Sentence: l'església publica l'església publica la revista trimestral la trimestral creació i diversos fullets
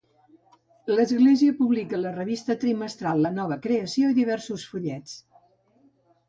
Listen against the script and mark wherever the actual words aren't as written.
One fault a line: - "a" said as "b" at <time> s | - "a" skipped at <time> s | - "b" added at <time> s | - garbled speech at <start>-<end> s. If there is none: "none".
- "l'església publica" skipped at 2.0 s
- "trimestral" said as "nova" at 3.4 s